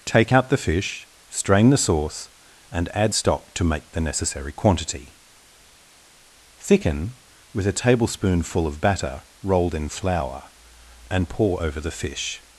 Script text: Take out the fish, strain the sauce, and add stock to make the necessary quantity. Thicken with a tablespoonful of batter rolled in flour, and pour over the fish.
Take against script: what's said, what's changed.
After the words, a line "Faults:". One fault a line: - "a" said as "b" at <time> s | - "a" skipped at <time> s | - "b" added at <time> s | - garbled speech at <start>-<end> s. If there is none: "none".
Take out the fish, strain the sauce, and add stock to make the necessary quantity. Thicken with a tablespoonful of batter rolled in flour, and pour over the fish.
Faults:
none